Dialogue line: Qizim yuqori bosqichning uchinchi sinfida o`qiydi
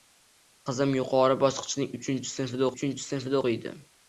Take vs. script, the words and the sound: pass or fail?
fail